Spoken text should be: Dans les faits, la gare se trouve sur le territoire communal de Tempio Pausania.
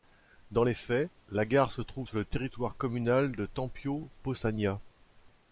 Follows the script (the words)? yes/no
yes